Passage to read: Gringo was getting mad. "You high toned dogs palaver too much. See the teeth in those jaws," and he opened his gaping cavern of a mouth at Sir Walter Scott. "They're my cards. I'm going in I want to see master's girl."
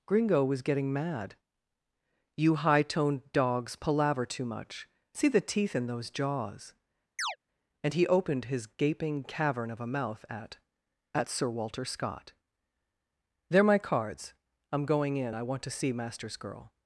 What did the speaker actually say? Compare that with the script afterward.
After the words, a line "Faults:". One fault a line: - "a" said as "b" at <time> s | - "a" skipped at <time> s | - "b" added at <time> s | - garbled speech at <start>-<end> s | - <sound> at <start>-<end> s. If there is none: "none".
Gringo was getting mad. "You high toned dogs palaver too much. See the teeth in those jaws," and he opened his gaping cavern of a mouth at at Sir Walter Scott. "They're my cards. I'm going in I want to see master's girl."
Faults:
- chirp at 7.2-7.4 s
- "at" added at 11.1 s